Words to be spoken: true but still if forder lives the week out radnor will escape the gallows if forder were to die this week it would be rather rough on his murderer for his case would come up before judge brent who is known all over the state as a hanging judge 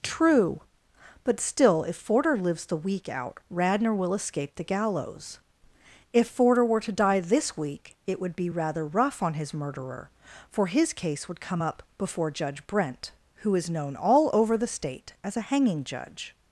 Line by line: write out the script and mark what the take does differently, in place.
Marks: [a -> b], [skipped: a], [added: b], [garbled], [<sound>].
true but still if forder lives the week out radnor will escape the gallows if forder were to die this week it would be rather rough on his murderer for his case would come up before judge brent who is known all over the state as a hanging judge